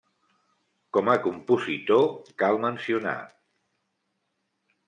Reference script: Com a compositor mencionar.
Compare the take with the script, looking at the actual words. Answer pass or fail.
fail